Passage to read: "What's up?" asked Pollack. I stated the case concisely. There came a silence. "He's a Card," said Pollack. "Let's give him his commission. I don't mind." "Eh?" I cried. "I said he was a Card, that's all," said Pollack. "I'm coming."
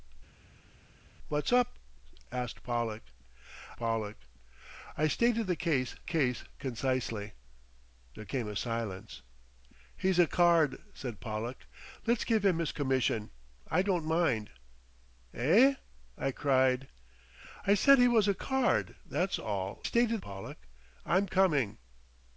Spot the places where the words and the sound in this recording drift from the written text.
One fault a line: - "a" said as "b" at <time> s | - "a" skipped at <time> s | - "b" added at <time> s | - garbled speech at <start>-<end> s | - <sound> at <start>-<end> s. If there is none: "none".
- "Pollack" added at 3.8 s
- "case" added at 6.0 s
- "said" said as "stated" at 19.8 s